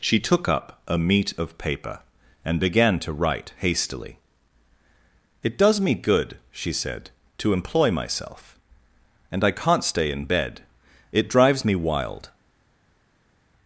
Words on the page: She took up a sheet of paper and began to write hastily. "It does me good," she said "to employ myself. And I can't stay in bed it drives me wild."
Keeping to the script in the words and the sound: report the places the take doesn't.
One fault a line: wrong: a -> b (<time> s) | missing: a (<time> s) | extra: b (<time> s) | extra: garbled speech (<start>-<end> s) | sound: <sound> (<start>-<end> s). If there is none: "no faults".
wrong: sheet -> meat (1.0 s)